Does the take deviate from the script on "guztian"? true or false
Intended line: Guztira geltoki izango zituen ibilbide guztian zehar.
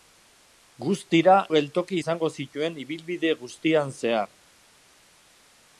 false